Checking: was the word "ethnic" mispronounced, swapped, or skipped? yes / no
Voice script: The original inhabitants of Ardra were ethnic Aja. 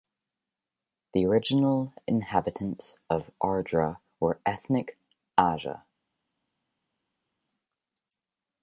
no